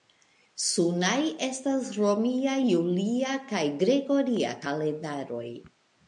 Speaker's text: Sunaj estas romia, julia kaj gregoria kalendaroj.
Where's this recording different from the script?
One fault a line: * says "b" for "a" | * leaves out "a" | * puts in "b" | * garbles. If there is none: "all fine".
all fine